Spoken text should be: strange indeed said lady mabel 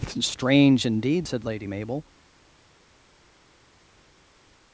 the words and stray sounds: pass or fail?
pass